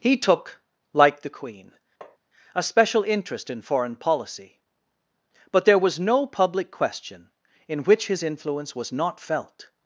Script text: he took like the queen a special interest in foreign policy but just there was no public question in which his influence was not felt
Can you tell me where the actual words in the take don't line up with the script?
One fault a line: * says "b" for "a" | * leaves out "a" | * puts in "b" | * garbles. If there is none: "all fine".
* leaves out "just"